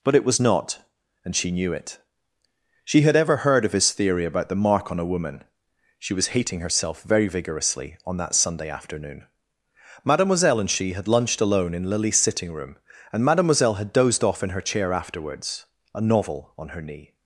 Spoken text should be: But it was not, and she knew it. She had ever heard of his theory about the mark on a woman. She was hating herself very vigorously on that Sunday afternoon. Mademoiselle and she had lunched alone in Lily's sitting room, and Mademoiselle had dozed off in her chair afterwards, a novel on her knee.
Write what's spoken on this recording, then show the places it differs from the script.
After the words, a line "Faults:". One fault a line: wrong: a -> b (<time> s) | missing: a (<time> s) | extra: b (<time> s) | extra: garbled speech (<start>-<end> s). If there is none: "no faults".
But it was not, and she knew it. She had ever heard of his theory about the mark on a woman. She was hating herself very vigorously on that Sunday afternoon. Mademoiselle and she had lunched alone in Lily's sitting room, and Mademoiselle had dozed off in her chair afterwards, a novel on her knee.
Faults:
no faults